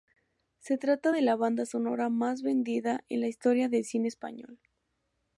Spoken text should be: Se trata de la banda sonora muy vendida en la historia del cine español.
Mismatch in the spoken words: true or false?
true